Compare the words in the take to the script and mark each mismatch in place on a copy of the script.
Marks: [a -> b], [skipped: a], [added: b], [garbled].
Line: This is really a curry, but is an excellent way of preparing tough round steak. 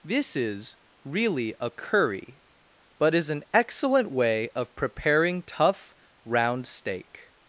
This is really a curry, but is an excellent way of preparing tough round steak.